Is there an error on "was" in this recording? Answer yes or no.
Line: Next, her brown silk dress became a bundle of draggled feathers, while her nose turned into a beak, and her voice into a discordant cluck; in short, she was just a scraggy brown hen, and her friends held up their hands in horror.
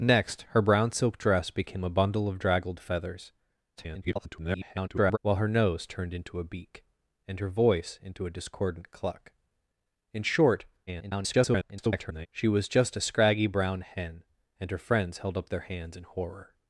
no